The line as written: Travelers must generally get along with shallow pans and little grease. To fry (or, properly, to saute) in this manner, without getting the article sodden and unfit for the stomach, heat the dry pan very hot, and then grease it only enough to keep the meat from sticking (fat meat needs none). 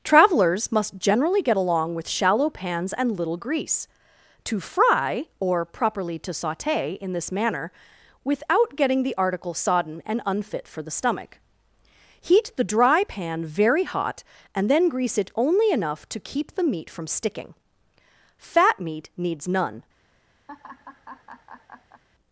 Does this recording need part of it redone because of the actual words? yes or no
no